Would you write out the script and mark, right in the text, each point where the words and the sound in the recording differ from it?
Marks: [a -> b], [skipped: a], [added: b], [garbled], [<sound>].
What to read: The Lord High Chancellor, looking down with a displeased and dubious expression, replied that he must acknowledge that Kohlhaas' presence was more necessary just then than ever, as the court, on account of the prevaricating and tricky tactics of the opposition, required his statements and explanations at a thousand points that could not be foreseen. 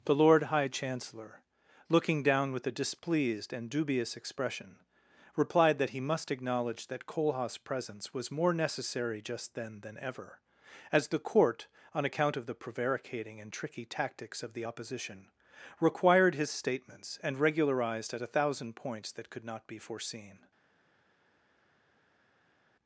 The Lord High Chancellor, looking down with a displeased and dubious expression, replied that he must acknowledge that Kohlhaas' presence was more necessary just then than ever, as the court, on account of the prevaricating and tricky tactics of the opposition, required his statements and [explanations -> regularized] at a thousand points that could not be foreseen.